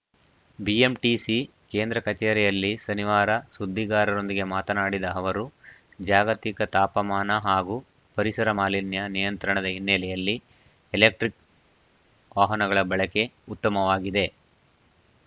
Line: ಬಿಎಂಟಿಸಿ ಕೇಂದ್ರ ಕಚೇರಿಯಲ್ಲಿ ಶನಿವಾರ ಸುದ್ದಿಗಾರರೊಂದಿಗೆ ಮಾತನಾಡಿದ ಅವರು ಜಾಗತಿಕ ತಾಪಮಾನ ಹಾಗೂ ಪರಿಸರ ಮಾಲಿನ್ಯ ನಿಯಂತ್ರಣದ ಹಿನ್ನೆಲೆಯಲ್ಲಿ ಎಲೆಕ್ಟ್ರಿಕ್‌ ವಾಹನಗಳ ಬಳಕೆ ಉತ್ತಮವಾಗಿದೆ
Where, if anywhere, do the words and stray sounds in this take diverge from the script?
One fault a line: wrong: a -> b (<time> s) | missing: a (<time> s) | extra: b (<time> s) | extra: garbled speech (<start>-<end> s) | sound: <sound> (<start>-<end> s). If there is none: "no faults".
no faults